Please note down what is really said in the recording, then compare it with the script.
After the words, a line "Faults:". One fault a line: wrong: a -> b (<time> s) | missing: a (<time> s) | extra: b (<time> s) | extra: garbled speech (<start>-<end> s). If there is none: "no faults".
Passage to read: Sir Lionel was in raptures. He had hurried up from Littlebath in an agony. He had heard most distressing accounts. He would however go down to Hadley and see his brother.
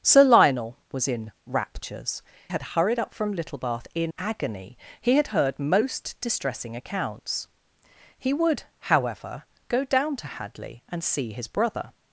Sir Lionel was in raptures. Had hurried up from Littlebath in agony. He had heard most distressing accounts. He would however go down to Hadley and see his brother.
Faults:
missing: He (2.2 s)
missing: an (4.1 s)